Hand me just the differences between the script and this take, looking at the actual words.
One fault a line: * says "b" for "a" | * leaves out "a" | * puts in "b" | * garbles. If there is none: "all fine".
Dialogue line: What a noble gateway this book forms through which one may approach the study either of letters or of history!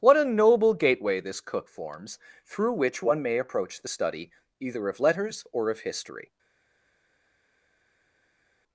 * says "cook" for "book"